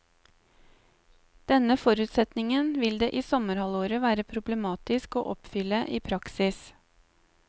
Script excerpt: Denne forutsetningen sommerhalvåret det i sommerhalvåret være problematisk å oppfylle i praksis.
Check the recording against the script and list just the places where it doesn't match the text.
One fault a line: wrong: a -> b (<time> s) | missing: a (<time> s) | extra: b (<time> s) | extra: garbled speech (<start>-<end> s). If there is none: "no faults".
wrong: sommerhalvåret -> vil (2.9 s)